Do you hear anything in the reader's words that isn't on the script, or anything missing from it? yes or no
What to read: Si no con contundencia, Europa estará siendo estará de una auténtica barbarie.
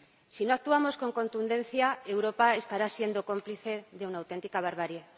yes